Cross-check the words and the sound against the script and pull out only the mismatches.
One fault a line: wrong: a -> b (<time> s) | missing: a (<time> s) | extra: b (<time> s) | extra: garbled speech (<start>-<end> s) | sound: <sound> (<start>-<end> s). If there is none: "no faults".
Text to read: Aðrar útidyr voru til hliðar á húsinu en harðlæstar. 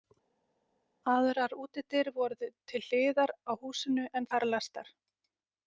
no faults